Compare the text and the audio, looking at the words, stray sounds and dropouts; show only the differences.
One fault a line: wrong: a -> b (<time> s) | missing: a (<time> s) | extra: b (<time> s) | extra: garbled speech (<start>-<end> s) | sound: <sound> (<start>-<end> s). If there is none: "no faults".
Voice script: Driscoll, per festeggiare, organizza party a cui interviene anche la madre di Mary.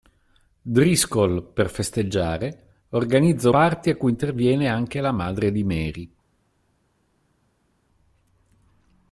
no faults